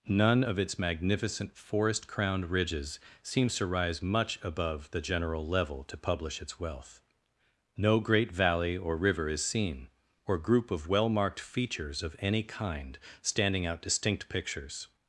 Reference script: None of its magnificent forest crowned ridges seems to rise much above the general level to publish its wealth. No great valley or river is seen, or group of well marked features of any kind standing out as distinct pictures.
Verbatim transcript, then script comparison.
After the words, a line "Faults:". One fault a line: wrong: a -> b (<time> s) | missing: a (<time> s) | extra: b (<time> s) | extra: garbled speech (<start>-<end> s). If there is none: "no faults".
None of its magnificent forest crowned ridges seems to rise much above the general level to publish its wealth. No great valley or river is seen, or group of well marked features of any kind standing out distinct pictures.
Faults:
missing: as (13.8 s)